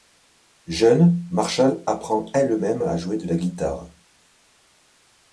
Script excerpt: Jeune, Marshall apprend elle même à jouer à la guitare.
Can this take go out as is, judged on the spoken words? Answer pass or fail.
fail